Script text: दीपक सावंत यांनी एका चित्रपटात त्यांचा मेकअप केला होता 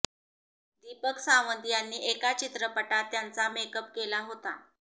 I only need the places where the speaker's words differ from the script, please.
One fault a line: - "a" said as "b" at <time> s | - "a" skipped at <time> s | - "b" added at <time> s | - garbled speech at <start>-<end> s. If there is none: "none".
none